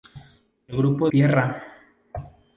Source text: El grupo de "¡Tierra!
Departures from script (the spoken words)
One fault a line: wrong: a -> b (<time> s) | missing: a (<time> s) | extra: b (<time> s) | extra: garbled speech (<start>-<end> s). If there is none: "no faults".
missing: de (1.1 s)